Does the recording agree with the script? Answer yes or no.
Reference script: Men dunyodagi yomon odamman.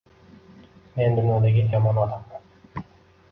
yes